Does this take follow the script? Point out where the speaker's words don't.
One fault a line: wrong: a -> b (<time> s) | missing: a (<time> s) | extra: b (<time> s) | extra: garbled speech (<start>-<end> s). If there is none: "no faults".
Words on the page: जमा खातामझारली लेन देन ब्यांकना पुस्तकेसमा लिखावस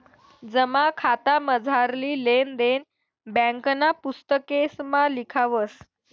no faults